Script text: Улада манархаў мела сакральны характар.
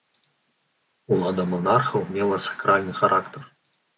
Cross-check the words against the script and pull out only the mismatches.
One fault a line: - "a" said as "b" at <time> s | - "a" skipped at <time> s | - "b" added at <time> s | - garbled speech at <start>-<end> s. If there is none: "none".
none